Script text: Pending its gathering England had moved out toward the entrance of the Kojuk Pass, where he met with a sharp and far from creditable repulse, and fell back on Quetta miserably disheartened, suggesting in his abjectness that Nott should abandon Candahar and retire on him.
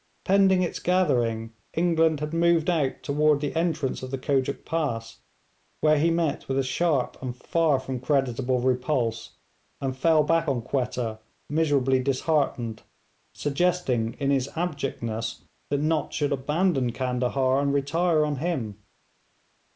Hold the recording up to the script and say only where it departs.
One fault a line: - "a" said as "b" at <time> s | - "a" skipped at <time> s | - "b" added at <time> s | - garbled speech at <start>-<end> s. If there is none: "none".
none